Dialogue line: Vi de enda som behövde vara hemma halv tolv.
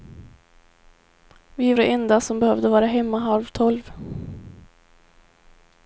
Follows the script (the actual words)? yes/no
yes